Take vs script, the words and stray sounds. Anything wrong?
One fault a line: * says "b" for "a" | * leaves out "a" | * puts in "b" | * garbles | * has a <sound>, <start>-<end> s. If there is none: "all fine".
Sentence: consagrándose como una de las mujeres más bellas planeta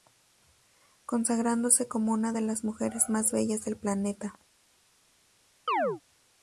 * puts in "del"
* has a chirp, 5.7-6.0 s